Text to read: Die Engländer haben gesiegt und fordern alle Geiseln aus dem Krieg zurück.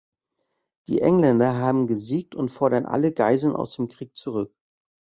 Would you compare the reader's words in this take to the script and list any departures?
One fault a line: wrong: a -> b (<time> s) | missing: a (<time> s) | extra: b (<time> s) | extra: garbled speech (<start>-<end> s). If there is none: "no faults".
no faults